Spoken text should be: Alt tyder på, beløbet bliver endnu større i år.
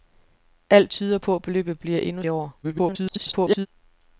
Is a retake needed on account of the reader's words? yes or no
yes